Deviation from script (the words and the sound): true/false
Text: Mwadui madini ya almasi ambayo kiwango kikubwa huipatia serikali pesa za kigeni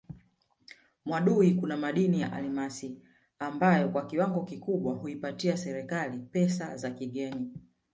true